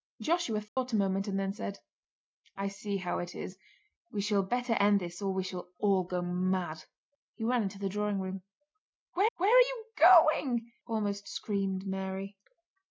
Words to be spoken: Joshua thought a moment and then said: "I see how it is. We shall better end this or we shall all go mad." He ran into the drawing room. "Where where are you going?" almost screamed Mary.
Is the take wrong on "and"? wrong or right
right